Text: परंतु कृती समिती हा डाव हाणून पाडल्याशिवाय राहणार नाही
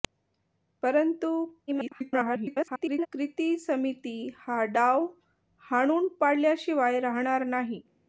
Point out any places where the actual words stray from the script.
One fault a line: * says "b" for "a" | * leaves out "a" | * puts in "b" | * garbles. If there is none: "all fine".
* garbles